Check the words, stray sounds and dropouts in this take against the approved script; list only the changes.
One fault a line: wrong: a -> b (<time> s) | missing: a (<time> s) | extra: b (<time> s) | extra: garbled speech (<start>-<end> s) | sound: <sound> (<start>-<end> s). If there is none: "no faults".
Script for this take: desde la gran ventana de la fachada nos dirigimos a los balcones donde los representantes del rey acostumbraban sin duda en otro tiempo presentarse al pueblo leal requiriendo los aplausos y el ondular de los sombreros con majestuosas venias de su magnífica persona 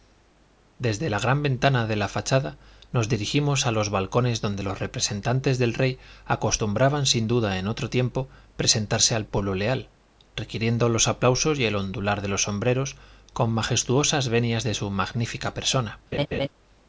sound: laugh (16.1-16.5 s)